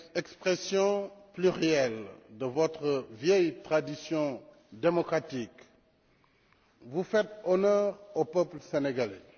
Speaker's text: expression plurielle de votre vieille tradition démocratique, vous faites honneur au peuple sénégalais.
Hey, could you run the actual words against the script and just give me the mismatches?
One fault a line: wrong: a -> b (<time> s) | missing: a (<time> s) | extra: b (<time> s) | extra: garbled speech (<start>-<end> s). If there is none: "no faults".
no faults